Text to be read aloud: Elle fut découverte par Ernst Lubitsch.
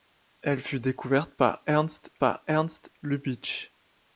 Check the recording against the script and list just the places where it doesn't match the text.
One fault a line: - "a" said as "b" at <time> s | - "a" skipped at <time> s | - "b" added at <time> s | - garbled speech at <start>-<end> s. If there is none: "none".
- "par Ernst" added at 2.2 s